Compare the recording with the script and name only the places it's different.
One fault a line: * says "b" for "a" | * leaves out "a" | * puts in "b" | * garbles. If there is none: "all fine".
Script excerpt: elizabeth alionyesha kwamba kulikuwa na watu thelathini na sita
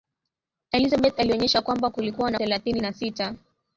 * leaves out "watu"